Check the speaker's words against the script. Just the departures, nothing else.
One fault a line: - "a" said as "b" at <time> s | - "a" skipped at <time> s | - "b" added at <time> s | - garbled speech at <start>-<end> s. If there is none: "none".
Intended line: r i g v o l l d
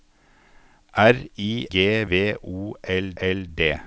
none